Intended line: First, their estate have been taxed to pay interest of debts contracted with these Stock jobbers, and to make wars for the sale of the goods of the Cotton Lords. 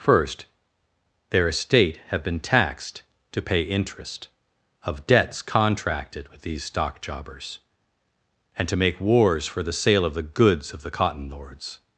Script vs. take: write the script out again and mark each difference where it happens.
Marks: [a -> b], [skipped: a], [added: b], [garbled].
First, their estate have been taxed to pay interest of debts contracted with these Stock jobbers, and to make wars for the sale of the goods of the Cotton Lords.